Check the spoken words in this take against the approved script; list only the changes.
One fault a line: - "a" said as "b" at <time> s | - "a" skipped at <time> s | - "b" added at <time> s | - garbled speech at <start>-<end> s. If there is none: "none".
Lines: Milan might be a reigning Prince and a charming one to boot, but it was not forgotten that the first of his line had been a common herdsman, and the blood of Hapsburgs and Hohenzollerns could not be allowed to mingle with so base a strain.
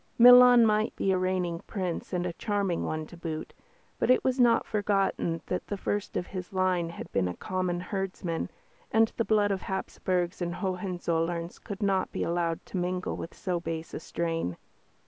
none